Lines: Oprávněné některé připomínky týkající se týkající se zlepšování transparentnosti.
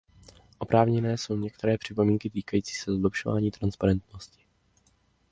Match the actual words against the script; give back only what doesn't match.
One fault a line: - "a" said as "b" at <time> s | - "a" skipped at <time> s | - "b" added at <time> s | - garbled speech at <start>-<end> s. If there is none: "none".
- "jsou" added at 1.2 s
- "týkající se" skipped at 2.9 s